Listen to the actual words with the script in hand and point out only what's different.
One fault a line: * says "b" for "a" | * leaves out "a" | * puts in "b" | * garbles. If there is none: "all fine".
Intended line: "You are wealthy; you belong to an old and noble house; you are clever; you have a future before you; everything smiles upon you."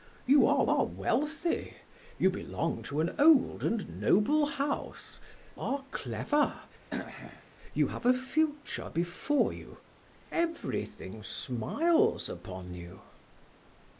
* puts in "are"
* leaves out "you"